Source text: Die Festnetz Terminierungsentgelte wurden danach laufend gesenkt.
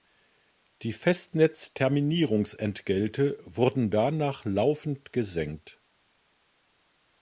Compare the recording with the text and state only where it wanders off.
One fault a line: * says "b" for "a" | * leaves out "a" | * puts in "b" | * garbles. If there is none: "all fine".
all fine